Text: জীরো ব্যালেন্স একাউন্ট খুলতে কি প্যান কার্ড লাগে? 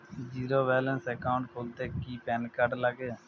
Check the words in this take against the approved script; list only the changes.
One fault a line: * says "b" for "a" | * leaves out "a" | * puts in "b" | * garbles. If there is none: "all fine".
all fine